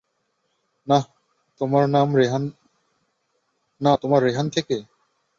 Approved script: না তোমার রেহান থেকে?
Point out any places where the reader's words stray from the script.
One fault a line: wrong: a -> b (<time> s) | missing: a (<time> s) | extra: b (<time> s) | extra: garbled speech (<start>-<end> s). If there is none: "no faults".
no faults